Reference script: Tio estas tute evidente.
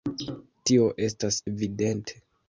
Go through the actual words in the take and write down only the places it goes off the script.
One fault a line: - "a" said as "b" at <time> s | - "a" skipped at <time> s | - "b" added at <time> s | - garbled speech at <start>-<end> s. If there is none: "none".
- "tute" skipped at 1.4 s